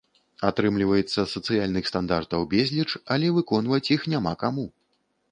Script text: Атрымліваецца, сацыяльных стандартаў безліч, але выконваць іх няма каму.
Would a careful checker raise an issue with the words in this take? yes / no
no